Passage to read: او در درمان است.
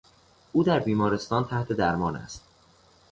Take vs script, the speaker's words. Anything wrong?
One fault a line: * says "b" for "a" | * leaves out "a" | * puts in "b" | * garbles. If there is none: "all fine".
* puts in "بیمارستان تحت"